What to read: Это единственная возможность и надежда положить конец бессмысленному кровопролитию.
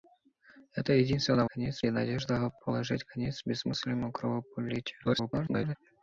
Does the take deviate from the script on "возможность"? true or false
true